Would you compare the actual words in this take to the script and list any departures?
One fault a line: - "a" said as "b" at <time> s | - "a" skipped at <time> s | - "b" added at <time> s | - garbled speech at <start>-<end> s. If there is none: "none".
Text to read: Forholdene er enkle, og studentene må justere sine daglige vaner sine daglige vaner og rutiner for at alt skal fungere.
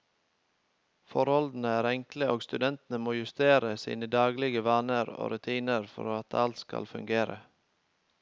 - "sine daglige vaner" skipped at 5.1 s